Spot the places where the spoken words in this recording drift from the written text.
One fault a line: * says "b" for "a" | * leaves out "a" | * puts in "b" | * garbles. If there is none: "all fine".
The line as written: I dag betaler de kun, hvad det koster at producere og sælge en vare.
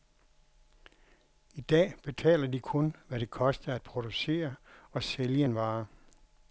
all fine